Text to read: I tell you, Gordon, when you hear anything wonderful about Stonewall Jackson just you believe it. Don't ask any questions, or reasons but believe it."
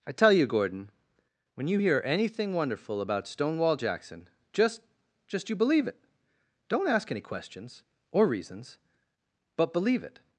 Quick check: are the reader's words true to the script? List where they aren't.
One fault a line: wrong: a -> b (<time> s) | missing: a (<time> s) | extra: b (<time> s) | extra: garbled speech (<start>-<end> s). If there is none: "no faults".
extra: just (5.3 s)